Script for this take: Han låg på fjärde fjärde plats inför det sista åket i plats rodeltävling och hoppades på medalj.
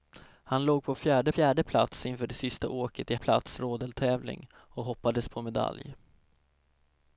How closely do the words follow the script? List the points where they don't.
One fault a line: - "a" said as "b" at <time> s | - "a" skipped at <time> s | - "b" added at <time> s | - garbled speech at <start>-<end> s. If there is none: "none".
none